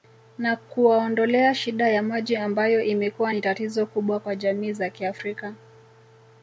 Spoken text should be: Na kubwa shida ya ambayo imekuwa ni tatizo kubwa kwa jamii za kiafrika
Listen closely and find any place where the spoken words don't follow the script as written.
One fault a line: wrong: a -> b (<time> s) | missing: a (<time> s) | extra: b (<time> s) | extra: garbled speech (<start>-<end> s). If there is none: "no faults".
wrong: kubwa -> kuwaondolea (0.6 s)
extra: maji (2.0 s)